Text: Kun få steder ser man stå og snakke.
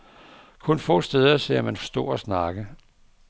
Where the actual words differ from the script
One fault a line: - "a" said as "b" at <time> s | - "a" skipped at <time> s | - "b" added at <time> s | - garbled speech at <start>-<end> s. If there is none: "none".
none